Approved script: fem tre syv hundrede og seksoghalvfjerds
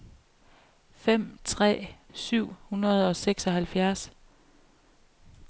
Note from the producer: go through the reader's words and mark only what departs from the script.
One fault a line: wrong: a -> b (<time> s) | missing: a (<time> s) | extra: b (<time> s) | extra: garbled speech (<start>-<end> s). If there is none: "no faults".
no faults